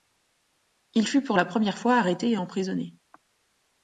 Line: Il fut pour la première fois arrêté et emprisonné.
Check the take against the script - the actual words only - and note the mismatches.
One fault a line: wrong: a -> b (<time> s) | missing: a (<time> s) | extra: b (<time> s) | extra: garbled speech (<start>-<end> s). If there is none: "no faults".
no faults